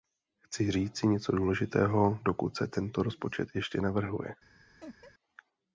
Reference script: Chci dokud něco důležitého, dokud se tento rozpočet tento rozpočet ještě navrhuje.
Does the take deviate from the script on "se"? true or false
false